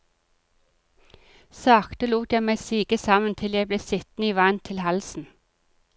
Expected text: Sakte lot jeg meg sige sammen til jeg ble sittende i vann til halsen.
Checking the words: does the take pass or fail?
pass